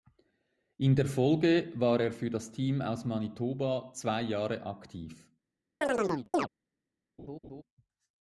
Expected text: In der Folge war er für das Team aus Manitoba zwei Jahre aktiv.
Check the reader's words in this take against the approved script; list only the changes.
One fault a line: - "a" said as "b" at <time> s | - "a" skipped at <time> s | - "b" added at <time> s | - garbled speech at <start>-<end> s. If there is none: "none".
none